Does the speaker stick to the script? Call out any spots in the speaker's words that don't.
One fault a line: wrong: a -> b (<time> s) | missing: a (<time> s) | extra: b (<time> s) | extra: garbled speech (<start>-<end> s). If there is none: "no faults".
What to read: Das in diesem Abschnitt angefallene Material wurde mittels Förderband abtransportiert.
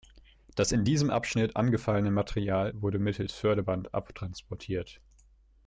no faults